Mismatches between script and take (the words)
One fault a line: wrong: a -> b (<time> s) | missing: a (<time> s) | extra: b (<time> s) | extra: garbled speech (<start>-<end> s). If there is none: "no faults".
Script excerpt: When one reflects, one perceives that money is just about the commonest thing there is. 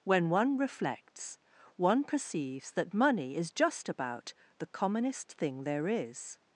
no faults